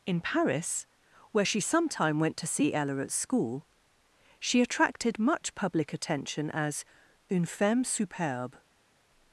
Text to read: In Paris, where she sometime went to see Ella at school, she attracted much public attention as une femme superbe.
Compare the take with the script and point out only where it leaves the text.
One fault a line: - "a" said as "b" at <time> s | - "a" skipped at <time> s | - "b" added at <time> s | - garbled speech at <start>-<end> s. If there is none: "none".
none